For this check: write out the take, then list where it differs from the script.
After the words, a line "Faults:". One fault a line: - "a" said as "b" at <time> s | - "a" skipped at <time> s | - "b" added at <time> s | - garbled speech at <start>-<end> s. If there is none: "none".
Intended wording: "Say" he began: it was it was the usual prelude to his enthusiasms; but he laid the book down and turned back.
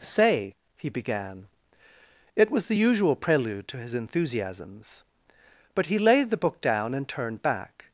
"Say" he began: it was the usual prelude to his enthusiasms; but he laid the book down and turned back.
Faults:
- "it was" skipped at 2.6 s